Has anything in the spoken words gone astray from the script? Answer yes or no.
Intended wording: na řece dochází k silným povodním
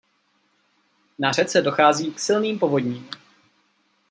no